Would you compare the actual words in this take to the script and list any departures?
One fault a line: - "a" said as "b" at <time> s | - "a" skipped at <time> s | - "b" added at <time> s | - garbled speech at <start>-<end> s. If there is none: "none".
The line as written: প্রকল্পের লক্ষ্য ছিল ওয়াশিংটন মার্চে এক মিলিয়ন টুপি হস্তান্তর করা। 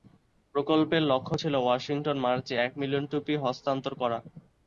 none